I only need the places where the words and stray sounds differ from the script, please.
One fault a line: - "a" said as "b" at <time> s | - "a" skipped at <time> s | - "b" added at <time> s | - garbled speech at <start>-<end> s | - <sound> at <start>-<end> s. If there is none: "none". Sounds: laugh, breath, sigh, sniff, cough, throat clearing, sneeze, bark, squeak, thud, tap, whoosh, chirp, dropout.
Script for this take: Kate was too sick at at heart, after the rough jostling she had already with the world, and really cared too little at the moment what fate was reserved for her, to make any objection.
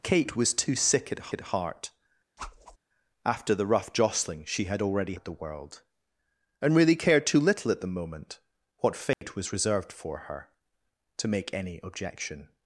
- whoosh at 2.4-2.8 s
- dropout at 9.1-9.2 s